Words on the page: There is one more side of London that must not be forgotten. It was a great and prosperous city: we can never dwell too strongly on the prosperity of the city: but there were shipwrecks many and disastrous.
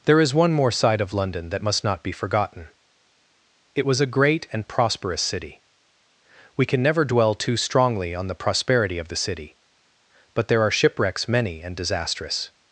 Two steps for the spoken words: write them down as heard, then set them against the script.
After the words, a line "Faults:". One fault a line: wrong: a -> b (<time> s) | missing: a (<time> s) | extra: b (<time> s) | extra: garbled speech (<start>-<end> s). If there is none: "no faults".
There is one more side of London that must not be forgotten. It was a great and prosperous city: we can never dwell too strongly on the prosperity of the city: but there are shipwrecks many and disastrous.
Faults:
wrong: were -> are (10.6 s)